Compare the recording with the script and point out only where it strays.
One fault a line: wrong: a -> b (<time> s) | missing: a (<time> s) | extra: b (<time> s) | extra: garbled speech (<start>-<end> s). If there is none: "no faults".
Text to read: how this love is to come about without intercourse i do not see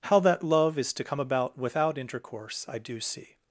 wrong: this -> that (0.2 s)
missing: not (3.0 s)